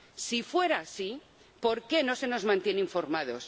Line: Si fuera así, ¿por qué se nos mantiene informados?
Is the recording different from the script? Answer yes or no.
yes